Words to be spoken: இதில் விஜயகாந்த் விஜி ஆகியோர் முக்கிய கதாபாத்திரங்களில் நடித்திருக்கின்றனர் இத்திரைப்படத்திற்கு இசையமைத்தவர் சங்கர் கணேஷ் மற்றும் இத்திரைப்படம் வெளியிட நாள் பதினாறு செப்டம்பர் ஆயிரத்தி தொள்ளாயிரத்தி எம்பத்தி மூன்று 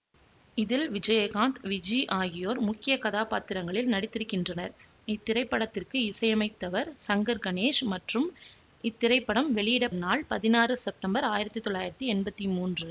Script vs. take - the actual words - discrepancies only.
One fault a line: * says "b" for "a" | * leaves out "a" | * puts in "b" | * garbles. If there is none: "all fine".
all fine